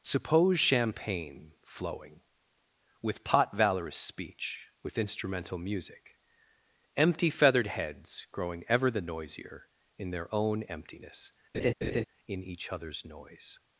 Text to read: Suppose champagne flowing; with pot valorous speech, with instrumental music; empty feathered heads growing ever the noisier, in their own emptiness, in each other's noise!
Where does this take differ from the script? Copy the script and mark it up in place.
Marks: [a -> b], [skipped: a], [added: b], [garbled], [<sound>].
Suppose champagne flowing; with pot valorous speech, with instrumental music; empty feathered heads growing ever the noisier, in their own emptiness, [laugh] in each other's noise!